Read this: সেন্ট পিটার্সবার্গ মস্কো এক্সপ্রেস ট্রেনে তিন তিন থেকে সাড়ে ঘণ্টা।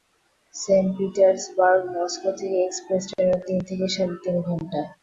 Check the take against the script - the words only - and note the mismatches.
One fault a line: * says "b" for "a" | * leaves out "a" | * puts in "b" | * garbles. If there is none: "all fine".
* puts in "থেকে"
* leaves out "তিন"
* puts in "তিন"